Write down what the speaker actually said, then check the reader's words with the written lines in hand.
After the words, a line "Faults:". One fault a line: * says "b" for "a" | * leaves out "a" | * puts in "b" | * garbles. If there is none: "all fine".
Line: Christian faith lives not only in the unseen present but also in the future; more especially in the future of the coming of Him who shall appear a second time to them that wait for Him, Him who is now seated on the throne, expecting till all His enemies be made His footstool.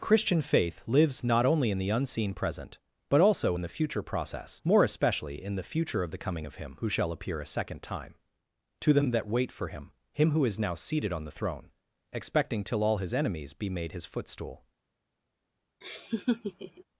Christian faith lives not only in the unseen present but also in the future; process more especially in the future of the coming of Him who shall appear a second time to them that wait for Him, Him who is now seated on the throne, expecting till all His enemies be made His footstool.
Faults:
* puts in "process"